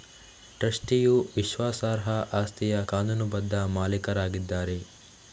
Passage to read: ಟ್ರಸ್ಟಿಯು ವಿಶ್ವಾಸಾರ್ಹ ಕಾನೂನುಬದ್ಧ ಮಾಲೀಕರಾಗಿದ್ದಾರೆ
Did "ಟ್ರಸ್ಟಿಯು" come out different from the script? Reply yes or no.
no